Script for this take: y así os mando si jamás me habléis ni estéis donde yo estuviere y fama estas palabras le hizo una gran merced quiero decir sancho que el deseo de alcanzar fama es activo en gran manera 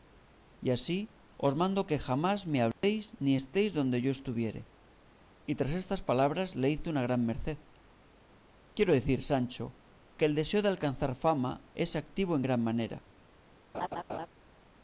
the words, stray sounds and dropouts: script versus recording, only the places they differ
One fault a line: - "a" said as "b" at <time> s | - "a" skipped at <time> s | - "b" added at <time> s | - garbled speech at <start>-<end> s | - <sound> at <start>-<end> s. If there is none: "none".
- "si" said as "que" at 1.9 s
- dropout at 2.7-2.8 s
- "fama" said as "tras" at 5.6 s
- laugh at 13.7-14.3 s